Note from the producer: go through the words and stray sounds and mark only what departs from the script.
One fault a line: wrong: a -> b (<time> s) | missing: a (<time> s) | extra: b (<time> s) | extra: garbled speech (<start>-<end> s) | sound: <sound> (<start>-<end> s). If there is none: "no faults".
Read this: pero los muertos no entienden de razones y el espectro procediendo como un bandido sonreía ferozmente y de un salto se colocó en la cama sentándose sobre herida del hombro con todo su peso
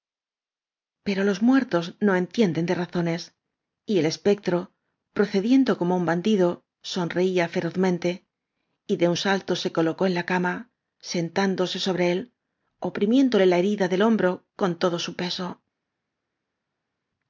extra: él oprimiéndole la (12.1 s)